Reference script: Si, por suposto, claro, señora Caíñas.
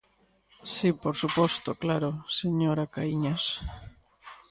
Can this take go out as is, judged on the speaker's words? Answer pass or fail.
pass